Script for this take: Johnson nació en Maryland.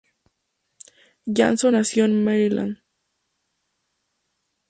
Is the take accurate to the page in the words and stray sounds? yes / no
yes